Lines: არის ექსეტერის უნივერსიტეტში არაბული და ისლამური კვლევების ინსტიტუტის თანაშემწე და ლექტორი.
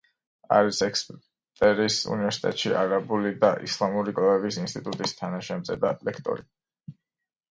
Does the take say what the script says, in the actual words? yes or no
yes